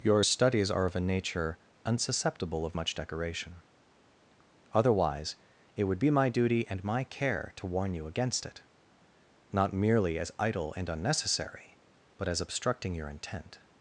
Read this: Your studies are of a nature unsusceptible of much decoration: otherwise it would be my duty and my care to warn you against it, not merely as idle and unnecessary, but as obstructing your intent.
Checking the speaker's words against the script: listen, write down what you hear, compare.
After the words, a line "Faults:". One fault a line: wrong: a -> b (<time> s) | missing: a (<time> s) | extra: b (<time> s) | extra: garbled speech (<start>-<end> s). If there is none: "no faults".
Your studies are of a nature unsusceptible of much decoration: otherwise it would be my duty and my care to warn you against it, not merely as idle and unnecessary, but as obstructing your intent.
Faults:
no faults